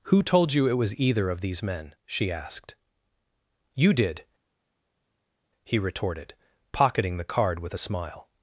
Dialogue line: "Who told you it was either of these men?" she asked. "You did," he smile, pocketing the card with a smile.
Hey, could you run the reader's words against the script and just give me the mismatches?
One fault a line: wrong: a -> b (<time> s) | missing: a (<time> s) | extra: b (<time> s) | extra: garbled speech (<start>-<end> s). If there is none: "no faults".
wrong: smile -> retorted (5.8 s)